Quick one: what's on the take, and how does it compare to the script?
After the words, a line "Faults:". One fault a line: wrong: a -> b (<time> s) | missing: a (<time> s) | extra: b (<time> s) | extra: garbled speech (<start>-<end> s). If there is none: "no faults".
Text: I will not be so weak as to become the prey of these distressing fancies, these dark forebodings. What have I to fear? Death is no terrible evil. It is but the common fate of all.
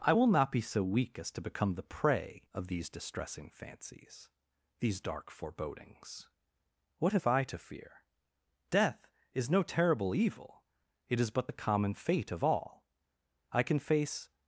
I will not be so weak as to become the prey of these distressing fancies, these dark forebodings. What have I to fear? Death is no terrible evil. It is but the common fate of all. I can face
Faults:
extra: I can face (13.5 s)